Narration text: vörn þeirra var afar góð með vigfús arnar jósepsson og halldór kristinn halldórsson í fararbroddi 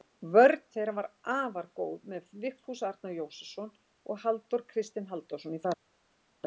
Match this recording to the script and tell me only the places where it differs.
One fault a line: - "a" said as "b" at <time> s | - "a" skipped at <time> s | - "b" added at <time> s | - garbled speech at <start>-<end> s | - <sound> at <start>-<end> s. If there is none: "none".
none